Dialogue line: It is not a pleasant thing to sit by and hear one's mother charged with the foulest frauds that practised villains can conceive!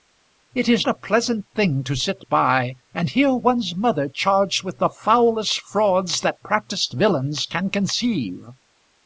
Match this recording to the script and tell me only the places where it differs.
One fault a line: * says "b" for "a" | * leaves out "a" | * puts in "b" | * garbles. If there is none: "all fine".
* leaves out "not"